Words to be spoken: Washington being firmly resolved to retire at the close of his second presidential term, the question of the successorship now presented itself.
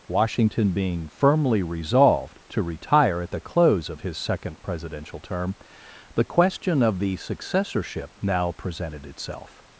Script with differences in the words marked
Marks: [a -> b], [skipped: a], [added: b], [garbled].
Washington being firmly resolved to retire at the close of his second presidential term, the question of the successorship now presented itself.